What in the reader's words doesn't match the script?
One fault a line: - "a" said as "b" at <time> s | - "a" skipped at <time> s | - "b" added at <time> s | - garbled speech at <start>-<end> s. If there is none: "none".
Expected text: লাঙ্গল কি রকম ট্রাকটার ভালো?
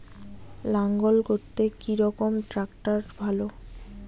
- "করতে" added at 1.3 s